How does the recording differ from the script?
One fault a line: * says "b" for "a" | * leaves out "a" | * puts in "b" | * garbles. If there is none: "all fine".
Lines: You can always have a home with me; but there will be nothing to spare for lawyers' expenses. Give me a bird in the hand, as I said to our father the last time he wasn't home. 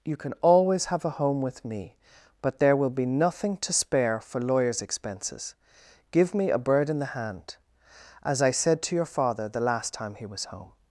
* says "your" for "our"
* says "was" for "wasn't"